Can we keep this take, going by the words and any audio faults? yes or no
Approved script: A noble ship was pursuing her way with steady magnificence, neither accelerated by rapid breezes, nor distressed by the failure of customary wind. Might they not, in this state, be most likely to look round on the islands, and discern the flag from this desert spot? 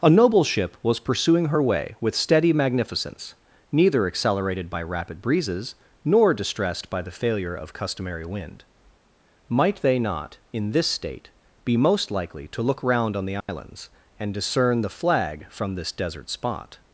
no